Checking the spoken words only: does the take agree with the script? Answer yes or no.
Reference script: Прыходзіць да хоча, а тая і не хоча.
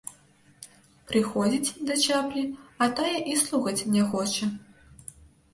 no